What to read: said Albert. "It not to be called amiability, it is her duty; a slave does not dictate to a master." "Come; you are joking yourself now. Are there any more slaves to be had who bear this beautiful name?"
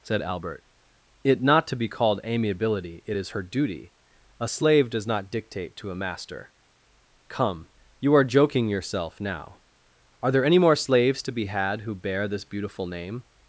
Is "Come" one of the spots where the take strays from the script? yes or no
no